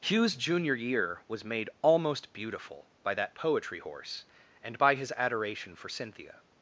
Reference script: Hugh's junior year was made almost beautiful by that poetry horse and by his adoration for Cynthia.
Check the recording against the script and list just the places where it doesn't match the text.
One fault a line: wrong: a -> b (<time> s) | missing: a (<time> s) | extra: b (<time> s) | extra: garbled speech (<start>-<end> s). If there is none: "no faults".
no faults